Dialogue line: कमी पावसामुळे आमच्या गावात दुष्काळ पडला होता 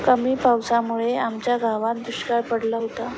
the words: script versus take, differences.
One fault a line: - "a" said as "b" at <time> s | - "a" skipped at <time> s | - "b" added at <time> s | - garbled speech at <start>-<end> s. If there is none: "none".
none